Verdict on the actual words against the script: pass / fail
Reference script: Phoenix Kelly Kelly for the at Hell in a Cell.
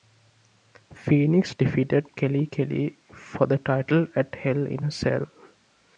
fail